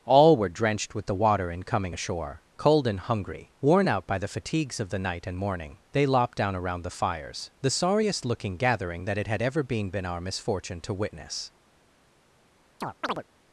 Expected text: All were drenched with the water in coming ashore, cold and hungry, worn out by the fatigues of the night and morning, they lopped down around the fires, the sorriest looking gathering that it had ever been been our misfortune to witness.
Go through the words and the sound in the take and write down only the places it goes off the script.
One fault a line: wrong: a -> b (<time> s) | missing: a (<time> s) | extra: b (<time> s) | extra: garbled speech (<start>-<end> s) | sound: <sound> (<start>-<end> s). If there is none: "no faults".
sound: chirp (12.8-13.2 s)